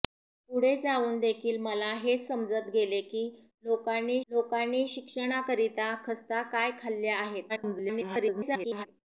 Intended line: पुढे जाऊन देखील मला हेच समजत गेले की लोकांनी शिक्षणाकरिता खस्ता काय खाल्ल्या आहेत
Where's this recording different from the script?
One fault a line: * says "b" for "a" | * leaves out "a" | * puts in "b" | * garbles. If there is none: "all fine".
* puts in "लोकांनी"
* garbles